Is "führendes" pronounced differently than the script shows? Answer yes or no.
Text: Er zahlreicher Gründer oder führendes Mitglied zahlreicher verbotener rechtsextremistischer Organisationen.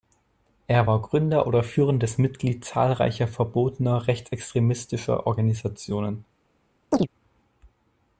no